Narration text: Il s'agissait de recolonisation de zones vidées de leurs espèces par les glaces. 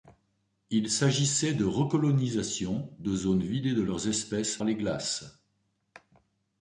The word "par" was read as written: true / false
false